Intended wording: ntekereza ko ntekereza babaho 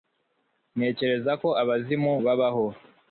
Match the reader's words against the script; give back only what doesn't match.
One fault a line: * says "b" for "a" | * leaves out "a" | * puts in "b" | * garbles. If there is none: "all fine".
* says "abazimu" for "ntekereza"